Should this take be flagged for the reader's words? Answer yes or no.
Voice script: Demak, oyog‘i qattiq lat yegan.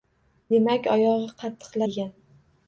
yes